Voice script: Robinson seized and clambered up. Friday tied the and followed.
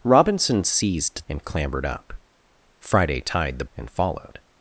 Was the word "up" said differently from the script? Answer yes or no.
no